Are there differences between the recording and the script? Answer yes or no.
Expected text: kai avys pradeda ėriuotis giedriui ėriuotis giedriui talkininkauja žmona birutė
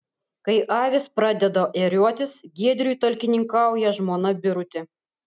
yes